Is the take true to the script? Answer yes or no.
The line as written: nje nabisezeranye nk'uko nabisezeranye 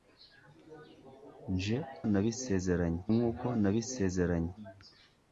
yes